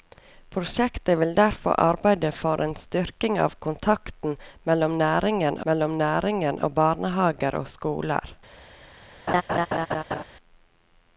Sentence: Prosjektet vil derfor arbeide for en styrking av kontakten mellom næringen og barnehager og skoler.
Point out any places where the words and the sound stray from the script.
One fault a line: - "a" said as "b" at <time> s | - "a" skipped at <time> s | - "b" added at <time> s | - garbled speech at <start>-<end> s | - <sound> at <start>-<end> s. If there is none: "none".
- "mellom næringen" added at 5.7 s
- laugh at 9.3-10.2 s